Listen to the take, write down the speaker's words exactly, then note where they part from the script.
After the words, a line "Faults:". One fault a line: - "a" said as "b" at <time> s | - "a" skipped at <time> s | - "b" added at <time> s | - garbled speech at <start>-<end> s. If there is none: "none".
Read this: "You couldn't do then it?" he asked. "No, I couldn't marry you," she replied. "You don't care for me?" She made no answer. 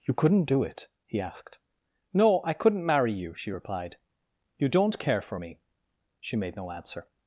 "You couldn't do it?" he asked. "No, I couldn't marry you," she replied. "You don't care for me?" She made no answer.
Faults:
- "then" skipped at 0.6 s